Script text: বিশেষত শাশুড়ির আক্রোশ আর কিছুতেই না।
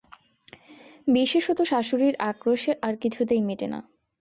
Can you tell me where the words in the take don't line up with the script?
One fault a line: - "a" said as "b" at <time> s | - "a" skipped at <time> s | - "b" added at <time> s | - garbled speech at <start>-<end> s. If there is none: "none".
- "মেটে" added at 3.5 s